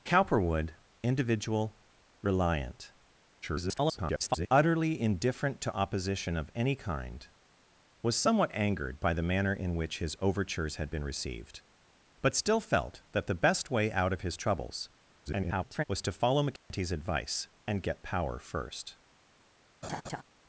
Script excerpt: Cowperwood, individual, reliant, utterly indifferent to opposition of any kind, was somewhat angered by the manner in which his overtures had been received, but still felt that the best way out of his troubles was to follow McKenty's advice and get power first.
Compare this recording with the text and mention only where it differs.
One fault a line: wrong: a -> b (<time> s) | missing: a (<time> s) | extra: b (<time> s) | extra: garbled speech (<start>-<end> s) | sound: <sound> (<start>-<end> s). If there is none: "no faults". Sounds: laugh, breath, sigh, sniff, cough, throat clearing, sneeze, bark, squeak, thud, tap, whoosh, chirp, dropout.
extra: garbled speech (3.4-4.5 s)
extra: garbled speech (15.3-15.8 s)
sound: dropout (16.6-16.7 s)
sound: laugh (19.8-20.2 s)